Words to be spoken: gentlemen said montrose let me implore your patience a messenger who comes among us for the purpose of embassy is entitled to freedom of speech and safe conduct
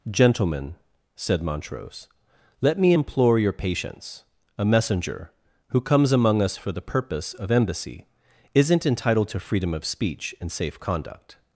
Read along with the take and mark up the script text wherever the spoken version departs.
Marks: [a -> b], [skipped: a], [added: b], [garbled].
gentlemen said montrose let me implore your patience a messenger who comes among us for the purpose of embassy [is -> isn't] entitled to freedom of speech and safe conduct